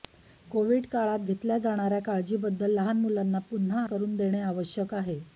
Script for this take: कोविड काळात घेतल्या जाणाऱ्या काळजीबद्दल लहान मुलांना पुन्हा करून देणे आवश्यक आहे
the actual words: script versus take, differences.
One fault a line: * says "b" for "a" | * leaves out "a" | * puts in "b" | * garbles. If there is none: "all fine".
all fine